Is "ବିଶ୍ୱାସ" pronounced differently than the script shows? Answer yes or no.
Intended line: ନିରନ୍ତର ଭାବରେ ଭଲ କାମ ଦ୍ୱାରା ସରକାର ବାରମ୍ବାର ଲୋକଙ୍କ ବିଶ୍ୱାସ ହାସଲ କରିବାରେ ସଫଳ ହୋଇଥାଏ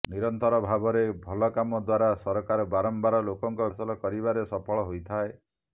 yes